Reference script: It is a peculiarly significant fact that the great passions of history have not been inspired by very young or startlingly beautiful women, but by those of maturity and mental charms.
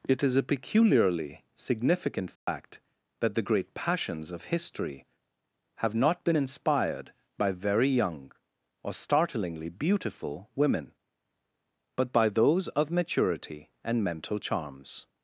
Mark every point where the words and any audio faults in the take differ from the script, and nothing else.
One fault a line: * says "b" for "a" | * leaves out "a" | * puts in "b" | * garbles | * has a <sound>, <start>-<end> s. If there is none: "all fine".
* has a dropout, 2.4-2.5 s